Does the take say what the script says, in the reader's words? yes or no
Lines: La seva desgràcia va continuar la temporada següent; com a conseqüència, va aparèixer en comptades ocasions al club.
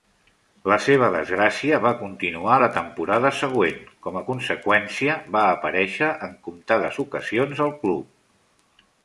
yes